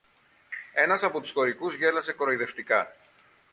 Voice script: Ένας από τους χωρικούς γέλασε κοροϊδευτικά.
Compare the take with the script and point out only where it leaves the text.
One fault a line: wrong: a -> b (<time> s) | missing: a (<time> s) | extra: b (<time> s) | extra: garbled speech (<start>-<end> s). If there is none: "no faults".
no faults